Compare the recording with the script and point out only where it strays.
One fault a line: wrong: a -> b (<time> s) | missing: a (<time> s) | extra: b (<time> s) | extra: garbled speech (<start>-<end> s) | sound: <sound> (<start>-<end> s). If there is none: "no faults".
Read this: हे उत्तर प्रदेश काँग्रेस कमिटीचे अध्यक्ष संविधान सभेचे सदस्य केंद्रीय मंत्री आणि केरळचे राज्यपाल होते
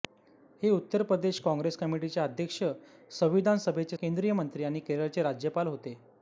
missing: सदस्य (4.0 s)